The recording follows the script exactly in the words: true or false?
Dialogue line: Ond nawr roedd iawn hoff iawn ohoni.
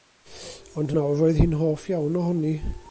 false